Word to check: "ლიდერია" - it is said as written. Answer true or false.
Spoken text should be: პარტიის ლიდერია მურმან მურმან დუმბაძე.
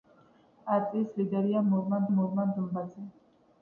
true